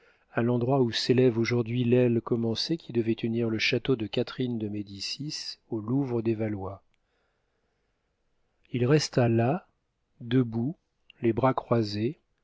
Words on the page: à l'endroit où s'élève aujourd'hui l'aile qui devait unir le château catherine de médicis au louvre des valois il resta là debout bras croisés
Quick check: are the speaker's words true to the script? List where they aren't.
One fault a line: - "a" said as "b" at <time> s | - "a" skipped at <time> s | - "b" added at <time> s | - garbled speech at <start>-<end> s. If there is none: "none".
- "commencée" added at 2.2 s
- "de" added at 4.0 s
- "les" added at 11.2 s